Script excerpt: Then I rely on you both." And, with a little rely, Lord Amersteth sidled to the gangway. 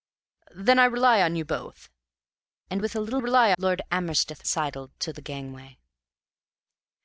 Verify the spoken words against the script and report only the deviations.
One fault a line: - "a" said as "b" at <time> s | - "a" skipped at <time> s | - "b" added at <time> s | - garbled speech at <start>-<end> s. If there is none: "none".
none